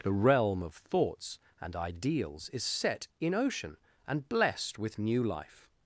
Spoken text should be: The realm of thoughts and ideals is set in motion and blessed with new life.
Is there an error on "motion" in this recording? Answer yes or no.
yes